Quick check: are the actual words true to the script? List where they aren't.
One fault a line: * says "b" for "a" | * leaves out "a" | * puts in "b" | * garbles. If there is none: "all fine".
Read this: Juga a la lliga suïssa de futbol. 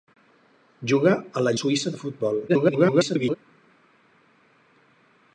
* leaves out "lliga"
* garbles